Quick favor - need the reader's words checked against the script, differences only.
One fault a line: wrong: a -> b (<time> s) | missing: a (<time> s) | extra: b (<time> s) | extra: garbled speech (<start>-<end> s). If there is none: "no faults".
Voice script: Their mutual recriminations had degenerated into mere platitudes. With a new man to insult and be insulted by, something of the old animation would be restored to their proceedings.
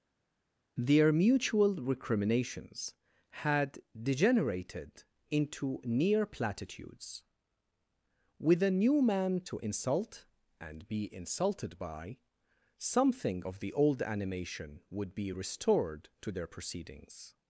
wrong: mere -> near (5.8 s)